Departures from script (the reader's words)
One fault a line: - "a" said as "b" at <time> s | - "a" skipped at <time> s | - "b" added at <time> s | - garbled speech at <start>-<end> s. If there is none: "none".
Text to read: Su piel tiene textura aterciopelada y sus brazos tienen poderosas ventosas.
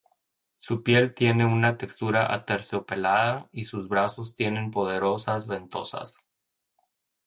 - "una" added at 1.4 s